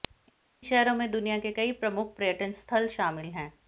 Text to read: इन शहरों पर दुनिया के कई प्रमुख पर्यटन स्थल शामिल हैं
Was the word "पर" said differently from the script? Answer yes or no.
yes